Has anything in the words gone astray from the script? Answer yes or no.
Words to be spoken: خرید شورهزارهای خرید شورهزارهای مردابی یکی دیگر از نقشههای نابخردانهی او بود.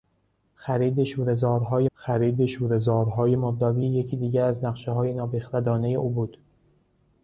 no